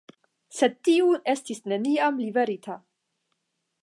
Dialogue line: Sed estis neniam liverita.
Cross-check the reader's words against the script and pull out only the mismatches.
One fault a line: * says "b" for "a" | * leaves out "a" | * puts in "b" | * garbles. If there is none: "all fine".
* puts in "tiu"